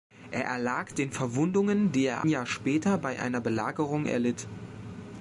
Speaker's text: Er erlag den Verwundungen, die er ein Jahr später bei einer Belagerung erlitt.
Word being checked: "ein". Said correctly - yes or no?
no